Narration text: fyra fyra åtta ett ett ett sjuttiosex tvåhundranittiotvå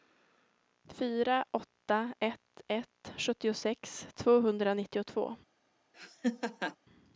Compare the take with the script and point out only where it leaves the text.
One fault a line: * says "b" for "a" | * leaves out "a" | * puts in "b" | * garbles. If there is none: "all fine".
* leaves out "fyra"
* leaves out "ett"